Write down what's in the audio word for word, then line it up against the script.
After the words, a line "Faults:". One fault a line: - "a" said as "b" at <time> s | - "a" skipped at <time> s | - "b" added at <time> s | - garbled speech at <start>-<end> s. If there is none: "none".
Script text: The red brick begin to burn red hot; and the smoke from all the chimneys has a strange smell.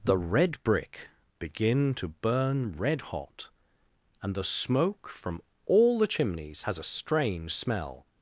The red brick begin to burn red hot; and the smoke from all the chimneys has a strange smell.
Faults:
none